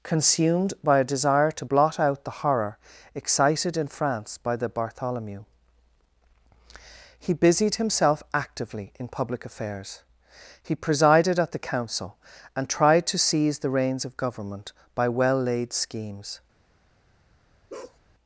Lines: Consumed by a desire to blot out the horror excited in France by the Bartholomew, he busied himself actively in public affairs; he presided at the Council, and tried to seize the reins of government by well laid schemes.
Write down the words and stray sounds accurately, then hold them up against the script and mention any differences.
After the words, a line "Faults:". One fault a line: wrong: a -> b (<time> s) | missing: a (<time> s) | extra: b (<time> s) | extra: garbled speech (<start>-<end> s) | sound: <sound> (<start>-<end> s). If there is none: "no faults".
Consumed by a desire to blot out the horror excited in France by the Bartholomew, he busied himself actively in public affairs; he presided at the Council, and tried to seize the reins of government by well laid schemes.
Faults:
sound: bark (17.7-18.0 s)